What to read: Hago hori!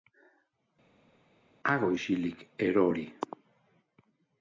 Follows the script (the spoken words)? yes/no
no